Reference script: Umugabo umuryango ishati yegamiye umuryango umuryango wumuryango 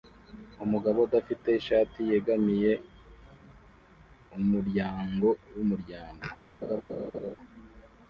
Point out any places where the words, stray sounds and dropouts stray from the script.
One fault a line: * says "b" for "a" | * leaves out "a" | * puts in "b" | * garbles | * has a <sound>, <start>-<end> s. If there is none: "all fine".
* says "udafite" for "umuryango"
* leaves out "umuryango"
* has a laugh, 6.6-7.4 s